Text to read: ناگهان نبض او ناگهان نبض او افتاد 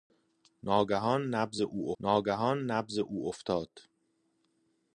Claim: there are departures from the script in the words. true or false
false